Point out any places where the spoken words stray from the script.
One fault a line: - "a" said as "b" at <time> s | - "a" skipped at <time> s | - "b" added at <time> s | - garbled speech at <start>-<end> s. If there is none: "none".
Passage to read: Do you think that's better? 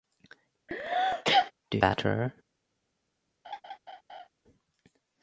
- "you think that's" skipped at 1.8 s